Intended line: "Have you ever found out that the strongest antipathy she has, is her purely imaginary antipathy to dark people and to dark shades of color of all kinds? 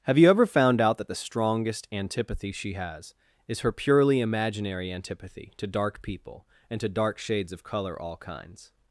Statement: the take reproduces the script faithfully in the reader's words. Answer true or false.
false